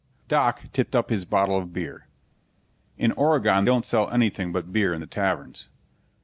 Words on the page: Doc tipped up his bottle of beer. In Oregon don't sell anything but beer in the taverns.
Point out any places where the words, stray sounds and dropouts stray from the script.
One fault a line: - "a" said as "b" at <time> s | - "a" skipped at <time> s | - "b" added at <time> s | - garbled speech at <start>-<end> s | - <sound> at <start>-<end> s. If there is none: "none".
none